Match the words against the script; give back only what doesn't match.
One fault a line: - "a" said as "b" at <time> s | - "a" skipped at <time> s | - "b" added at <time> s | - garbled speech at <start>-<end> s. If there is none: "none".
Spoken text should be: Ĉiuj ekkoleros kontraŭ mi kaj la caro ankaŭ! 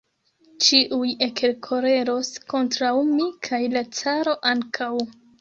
none